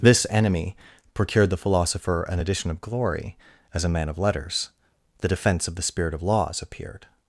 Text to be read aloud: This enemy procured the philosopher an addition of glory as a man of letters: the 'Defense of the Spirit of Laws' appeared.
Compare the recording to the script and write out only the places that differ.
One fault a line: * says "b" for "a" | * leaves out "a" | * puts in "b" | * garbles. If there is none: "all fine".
all fine